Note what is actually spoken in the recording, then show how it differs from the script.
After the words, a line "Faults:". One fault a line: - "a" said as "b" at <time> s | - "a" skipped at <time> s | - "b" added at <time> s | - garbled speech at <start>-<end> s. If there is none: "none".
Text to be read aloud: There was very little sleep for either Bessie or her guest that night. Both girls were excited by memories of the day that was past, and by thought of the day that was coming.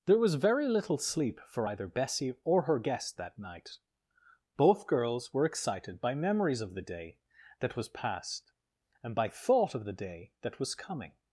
There was very little sleep for either Bessie or her guest that night. Both girls were excited by memories of the day that was past, and by thought of the day that was coming.
Faults:
none